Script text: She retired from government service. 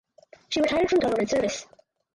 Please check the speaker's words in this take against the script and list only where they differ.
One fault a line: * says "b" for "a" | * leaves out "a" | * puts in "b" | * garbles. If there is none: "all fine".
all fine